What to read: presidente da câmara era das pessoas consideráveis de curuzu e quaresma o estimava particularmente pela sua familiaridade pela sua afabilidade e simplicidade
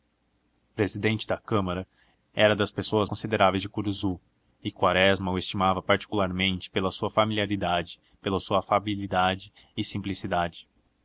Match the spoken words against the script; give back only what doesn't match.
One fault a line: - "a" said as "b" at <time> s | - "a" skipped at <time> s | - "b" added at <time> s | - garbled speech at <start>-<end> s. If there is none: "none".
none